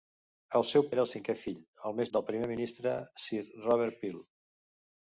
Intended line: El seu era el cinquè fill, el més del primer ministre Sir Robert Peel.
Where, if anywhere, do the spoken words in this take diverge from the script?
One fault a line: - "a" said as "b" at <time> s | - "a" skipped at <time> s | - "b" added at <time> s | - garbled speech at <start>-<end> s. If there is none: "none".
none